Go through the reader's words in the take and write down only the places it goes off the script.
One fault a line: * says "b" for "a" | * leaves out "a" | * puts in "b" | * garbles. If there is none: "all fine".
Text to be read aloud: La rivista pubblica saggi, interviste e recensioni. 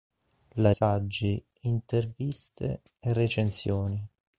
* leaves out "rivista pubblica"